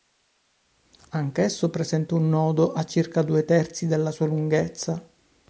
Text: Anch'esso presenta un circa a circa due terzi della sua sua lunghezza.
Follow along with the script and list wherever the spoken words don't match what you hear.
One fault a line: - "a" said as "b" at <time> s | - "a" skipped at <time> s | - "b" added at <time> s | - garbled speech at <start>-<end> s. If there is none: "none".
- "circa" said as "nodo" at 2.3 s
- "sua" skipped at 4.3 s